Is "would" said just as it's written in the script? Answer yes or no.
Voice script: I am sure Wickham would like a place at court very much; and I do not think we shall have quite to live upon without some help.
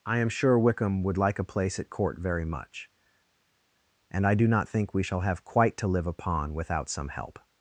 yes